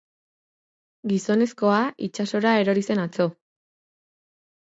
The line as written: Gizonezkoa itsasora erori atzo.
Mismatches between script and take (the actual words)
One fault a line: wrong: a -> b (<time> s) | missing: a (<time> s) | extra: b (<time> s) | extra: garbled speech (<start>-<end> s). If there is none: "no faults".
extra: zen (2.9 s)